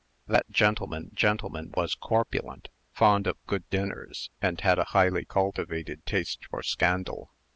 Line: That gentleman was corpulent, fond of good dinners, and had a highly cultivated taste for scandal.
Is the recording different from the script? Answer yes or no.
yes